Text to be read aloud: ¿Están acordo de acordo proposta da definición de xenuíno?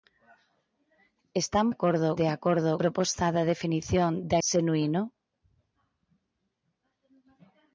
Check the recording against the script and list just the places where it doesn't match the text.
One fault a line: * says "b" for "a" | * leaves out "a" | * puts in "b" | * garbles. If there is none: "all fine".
all fine